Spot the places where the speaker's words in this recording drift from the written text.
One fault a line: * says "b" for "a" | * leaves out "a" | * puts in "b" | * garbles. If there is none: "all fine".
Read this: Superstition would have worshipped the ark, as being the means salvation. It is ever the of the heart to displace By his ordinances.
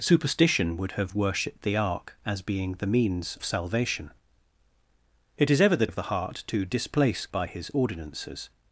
all fine